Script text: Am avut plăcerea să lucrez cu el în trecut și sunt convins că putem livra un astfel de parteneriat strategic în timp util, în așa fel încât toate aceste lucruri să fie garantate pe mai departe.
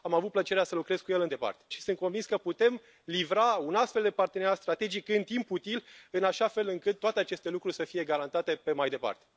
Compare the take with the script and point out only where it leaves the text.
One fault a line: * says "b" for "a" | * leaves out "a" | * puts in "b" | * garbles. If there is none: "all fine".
* says "departe" for "trecut"